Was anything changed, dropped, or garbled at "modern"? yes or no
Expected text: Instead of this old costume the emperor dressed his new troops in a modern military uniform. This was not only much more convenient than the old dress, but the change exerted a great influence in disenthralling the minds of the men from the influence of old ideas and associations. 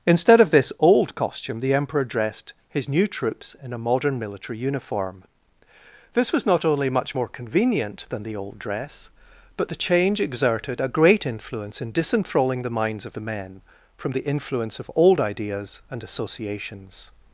no